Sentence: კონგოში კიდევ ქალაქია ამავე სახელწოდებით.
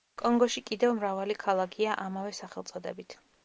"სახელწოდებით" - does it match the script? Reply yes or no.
yes